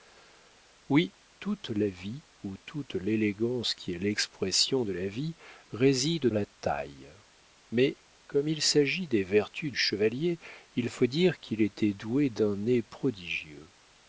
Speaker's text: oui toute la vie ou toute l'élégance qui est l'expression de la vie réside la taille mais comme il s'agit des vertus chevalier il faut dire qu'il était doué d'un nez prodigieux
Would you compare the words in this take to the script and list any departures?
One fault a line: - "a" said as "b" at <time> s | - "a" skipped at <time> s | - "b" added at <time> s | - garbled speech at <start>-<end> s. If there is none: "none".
none